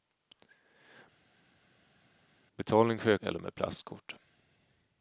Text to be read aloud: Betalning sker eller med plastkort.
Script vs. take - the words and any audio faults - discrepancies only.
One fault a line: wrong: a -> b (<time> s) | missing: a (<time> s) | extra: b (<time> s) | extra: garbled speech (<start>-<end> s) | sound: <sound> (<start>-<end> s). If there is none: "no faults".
no faults